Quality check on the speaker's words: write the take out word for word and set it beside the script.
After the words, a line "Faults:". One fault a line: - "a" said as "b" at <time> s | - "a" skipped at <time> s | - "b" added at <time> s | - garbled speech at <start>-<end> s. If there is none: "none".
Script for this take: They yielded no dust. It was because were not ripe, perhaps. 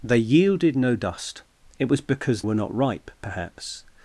They yielded no dust. It was because were not ripe, perhaps.
Faults:
none